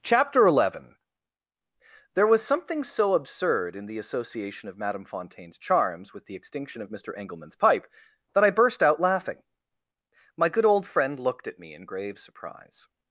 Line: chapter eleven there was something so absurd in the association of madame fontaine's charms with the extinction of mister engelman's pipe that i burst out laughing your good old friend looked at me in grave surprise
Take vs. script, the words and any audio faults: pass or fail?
fail